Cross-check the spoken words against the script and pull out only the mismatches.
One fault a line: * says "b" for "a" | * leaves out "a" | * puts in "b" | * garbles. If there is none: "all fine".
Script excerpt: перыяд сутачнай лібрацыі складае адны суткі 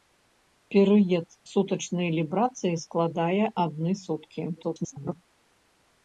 * garbles